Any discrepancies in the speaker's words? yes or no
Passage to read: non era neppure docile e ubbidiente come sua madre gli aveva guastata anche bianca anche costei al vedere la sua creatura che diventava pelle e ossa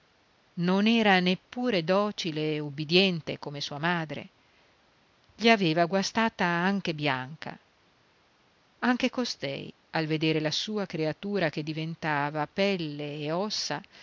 no